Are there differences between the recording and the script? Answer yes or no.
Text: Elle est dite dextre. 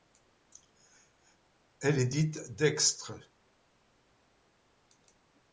no